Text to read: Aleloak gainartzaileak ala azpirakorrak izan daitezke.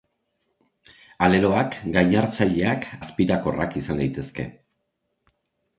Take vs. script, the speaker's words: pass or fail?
fail